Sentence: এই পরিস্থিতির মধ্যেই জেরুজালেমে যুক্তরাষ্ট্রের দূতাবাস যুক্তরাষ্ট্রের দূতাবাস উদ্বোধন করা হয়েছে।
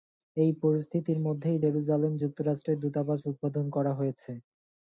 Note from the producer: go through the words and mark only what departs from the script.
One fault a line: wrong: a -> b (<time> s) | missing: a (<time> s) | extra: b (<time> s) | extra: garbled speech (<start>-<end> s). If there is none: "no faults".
missing: যুক্তরাষ্ট্রের দূতাবাস (3.2 s)